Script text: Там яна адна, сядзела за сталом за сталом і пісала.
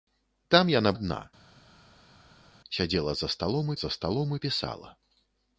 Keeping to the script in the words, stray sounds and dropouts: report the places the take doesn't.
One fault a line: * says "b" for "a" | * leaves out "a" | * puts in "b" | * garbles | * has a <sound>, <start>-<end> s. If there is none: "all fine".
all fine